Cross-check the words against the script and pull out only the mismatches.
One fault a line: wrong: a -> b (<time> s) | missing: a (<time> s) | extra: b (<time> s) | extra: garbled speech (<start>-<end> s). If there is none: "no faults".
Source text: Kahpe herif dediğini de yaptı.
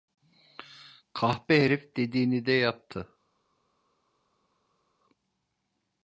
no faults